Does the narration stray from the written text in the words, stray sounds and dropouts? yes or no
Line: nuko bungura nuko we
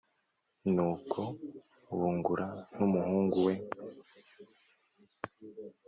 yes